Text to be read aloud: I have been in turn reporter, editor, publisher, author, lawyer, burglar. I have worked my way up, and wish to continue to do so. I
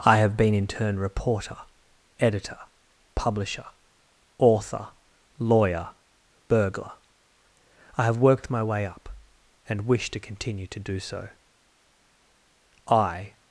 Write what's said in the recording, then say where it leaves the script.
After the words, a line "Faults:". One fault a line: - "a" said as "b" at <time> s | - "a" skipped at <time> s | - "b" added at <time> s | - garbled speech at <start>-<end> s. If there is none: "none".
I have been in turn reporter, editor, publisher, author, lawyer, burglar. I have worked my way up, and wish to continue to do so. I
Faults:
none